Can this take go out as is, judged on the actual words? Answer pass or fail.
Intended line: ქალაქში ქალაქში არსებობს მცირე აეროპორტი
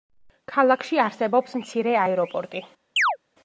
fail